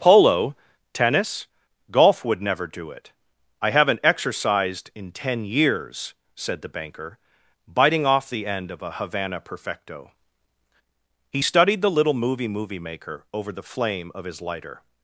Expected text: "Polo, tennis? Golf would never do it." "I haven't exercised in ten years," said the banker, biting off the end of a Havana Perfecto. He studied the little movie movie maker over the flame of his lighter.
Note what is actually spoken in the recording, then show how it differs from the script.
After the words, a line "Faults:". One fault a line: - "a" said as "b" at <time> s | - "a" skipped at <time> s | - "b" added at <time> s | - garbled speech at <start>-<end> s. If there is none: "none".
"Polo, tennis? Golf would never do it." "I haven't exercised in ten years," said the banker, biting off the end of a Havana Perfecto. He studied the little movie movie maker over the flame of his lighter.
Faults:
none